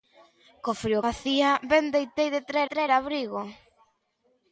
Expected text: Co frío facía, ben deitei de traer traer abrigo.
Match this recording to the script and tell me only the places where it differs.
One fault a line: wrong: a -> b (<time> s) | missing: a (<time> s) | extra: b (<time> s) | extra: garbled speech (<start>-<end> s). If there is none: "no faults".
no faults